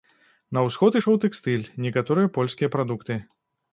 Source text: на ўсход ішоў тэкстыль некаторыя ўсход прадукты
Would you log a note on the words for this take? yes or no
yes